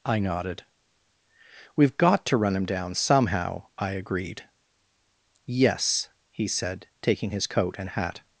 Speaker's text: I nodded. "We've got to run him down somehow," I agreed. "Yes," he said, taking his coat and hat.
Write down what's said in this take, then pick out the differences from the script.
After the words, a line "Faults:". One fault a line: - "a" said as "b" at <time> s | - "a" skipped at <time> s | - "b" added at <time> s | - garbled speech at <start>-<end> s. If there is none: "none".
I nodded. "We've got to run him down somehow," I agreed. "Yes," he said, taking his coat and hat.
Faults:
none